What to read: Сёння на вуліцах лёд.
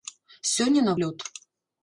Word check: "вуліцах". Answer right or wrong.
wrong